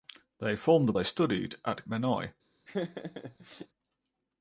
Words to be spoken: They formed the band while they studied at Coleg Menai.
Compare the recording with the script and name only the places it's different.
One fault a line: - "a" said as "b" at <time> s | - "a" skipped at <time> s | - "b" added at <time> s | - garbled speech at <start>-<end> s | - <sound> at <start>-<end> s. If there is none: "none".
- "band while" skipped at 0.9 s
- "Coleg" skipped at 1.9 s
- laugh at 2.7-3.7 s